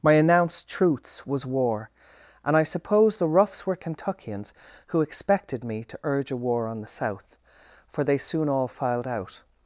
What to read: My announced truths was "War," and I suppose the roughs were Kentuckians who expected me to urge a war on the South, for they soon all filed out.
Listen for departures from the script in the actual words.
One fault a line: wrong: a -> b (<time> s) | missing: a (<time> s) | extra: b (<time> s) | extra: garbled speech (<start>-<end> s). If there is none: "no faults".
no faults